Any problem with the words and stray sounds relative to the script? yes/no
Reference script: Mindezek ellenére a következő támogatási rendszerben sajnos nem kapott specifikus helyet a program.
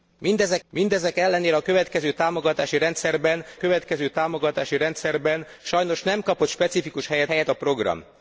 yes